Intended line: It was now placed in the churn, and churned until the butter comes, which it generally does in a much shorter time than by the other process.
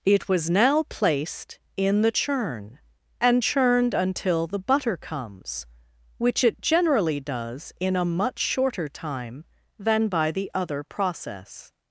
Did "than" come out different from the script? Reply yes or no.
no